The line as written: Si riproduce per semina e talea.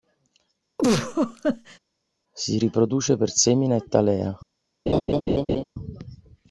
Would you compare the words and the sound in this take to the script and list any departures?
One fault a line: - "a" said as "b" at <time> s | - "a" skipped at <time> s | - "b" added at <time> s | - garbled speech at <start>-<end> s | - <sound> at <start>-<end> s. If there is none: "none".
- laugh at 0.8-1.8 s
- laugh at 4.9-5.6 s